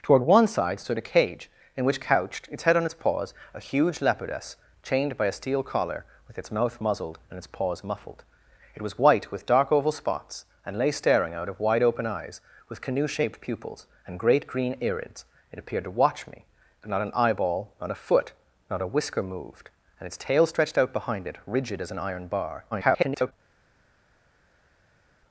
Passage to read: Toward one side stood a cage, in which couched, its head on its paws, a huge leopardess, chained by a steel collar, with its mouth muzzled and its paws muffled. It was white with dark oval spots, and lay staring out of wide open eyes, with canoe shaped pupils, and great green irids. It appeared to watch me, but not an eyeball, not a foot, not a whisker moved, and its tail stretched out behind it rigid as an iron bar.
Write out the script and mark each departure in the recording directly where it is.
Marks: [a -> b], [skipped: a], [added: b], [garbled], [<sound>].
Toward one side stood a cage, in which couched, its head on its paws, a huge leopardess, chained by a steel collar, with its mouth muzzled and its paws muffled. It was white with dark oval spots, and lay staring out of wide open eyes, with canoe shaped pupils, and great green irids. It appeared to watch me, but not an eyeball, not a foot, not a whisker moved, and its tail stretched out behind it rigid as an iron bar. [garbled]